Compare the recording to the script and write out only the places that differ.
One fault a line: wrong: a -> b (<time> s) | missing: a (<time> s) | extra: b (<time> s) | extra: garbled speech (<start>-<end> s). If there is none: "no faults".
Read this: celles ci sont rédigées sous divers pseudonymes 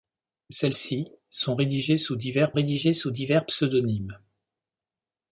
extra: rédigées sous divers (2.5 s)